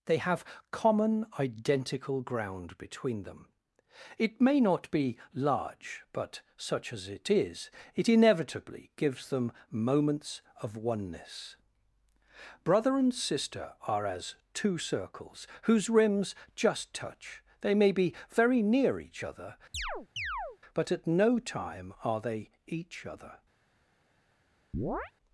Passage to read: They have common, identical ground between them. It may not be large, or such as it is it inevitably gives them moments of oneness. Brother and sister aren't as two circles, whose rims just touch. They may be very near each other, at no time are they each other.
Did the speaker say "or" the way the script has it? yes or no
no